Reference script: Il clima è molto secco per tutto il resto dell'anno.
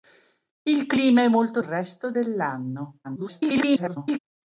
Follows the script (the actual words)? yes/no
no